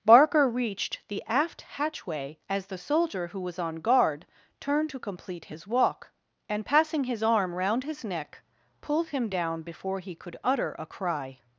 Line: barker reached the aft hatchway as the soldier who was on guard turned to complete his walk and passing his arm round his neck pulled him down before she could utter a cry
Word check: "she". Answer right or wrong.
wrong